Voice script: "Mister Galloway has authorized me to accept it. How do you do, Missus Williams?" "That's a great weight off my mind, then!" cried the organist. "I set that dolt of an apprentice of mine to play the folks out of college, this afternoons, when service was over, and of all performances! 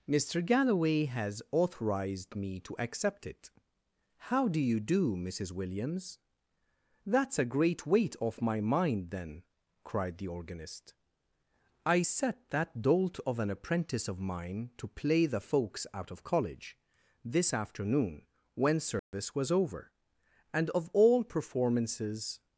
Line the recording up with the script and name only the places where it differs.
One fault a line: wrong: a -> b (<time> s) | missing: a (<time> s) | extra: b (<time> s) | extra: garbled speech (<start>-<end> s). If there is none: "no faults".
wrong: afternoons -> afternoon (17.5 s)